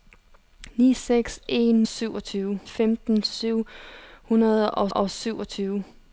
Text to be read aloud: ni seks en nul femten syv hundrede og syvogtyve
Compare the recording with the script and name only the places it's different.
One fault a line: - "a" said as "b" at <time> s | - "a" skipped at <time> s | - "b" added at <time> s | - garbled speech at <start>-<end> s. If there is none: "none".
- "nul" said as "syvogtyve" at 1.8 s
- "og" added at 4.9 s